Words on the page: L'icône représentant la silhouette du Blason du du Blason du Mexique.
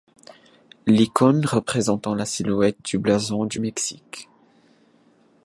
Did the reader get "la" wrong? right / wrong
right